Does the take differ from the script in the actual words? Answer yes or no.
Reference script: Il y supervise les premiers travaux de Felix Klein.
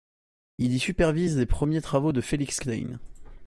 no